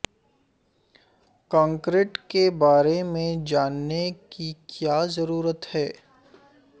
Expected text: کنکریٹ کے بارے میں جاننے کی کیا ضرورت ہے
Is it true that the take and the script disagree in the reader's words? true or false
false